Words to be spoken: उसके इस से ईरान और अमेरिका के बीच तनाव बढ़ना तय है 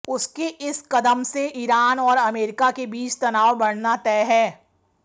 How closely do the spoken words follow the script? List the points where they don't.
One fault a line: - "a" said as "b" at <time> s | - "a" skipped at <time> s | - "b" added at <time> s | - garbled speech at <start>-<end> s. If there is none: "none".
- "कदम" added at 0.9 s